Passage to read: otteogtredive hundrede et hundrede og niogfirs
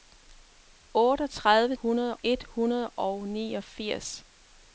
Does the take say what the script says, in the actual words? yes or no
yes